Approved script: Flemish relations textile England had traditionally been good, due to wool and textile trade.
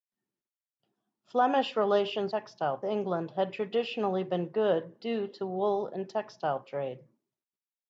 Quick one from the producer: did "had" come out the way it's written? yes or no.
yes